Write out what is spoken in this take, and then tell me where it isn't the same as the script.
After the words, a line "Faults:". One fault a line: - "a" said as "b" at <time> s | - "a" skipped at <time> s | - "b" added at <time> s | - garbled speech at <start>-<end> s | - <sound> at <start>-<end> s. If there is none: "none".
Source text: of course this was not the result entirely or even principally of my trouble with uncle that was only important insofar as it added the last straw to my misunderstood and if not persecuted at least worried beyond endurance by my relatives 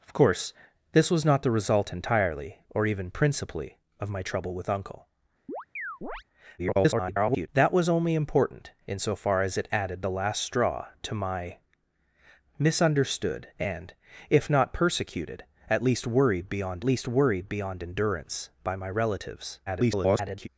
of course this was not the result entirely or even principally of my trouble with uncle [garbled] that was only important insofar as it added the last straw to my misunderstood and if not persecuted at least worried beyond least worried beyond endurance by my relatives [garbled]
Faults:
- chirp at 5.5-6.2 s
- garbled speech at 6.6-7.5 s
- "least worried beyond" added at 16.8 s
- garbled speech at 19.7-20.5 s